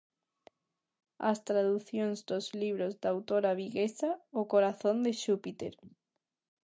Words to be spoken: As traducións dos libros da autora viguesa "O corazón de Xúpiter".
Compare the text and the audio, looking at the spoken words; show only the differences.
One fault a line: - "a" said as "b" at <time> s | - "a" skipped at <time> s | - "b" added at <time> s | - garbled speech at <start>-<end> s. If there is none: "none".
none